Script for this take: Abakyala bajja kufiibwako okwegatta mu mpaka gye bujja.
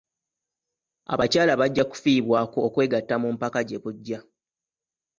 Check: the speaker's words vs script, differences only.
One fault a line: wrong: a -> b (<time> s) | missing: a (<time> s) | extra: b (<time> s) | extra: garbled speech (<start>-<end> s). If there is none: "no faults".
no faults